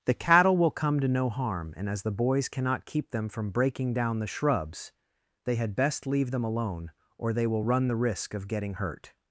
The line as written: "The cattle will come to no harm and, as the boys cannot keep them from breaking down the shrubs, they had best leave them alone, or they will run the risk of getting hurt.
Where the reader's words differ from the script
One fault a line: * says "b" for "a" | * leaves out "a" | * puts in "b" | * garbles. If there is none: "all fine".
all fine